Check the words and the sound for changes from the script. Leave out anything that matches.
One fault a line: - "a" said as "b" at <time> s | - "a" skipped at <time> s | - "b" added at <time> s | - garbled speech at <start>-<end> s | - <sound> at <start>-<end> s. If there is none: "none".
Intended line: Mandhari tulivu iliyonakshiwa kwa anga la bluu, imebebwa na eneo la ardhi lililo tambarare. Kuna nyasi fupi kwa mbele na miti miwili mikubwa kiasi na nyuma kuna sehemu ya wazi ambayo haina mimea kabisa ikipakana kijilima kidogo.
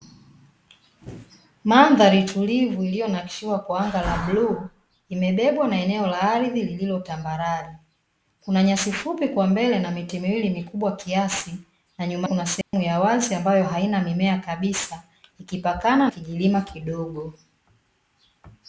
- dropout at 12.6-12.7 s